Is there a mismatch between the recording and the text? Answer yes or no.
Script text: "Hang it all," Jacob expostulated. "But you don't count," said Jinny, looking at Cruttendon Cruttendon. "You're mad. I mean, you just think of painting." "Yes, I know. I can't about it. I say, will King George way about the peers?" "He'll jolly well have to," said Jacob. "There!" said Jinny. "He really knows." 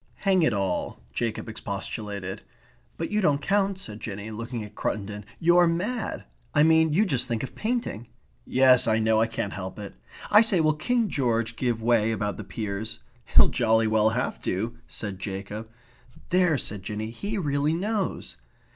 yes